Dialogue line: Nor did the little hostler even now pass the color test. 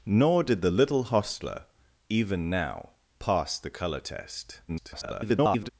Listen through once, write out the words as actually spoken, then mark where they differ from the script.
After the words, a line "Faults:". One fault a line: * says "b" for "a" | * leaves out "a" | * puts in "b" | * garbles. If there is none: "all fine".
Nor did the little hostler even now pass the color test. [garbled]
Faults:
* garbles